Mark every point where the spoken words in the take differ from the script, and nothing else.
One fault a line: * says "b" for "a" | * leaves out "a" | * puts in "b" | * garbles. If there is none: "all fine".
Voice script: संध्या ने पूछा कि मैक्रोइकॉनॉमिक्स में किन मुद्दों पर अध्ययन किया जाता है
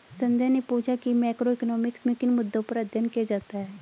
all fine